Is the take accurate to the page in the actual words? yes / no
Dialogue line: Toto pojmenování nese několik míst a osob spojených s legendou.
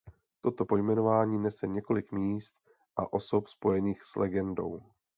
yes